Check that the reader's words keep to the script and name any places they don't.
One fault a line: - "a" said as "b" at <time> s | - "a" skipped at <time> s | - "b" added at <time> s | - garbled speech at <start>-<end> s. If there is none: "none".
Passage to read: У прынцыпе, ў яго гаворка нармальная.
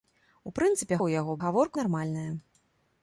none